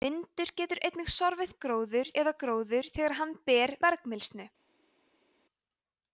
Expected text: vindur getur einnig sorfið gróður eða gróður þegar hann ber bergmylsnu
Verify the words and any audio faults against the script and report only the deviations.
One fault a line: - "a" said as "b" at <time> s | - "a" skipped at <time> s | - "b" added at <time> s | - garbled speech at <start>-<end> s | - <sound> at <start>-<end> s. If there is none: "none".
none